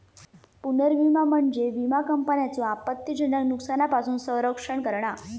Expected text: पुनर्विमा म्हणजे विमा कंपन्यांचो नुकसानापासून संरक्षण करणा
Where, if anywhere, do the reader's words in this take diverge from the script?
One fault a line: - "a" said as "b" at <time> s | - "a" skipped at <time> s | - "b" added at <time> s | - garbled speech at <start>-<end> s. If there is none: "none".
- "आपत्तीजनक" added at 2.6 s